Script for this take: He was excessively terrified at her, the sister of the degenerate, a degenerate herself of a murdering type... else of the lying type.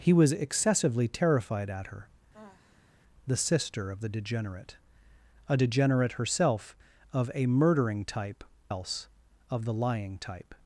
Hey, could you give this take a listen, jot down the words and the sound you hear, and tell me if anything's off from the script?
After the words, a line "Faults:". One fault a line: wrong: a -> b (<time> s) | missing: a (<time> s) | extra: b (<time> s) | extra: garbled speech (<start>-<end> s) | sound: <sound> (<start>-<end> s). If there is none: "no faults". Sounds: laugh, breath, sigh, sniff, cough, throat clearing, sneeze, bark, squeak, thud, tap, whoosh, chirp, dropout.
He was excessively terrified at her, the sister of the degenerate, a degenerate herself of a murdering type... else of the lying type.
Faults:
sound: sigh (2.3-3.0 s)